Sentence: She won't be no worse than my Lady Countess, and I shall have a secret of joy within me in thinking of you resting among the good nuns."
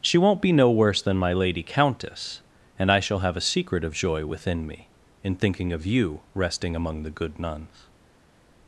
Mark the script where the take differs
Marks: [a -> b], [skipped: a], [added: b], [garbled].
She won't be no worse than my Lady Countess, and I shall have a secret of joy within me in thinking of you resting among the good nuns."